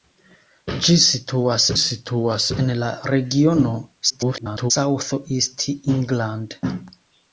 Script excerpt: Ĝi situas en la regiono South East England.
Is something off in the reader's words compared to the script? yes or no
yes